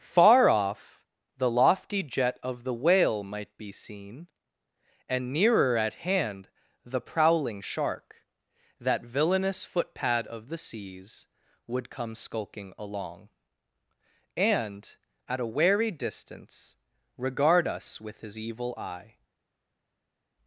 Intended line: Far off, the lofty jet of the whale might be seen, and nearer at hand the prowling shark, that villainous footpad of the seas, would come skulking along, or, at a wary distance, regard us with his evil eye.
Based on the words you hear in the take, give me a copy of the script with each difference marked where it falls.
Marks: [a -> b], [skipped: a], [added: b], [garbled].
Far off, the lofty jet of the whale might be seen, and nearer at hand the prowling shark, that villainous footpad of the seas, would come skulking along, [or, -> and] at a wary distance, regard us with his evil eye.